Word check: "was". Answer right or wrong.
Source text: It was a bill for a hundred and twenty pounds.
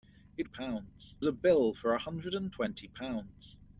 wrong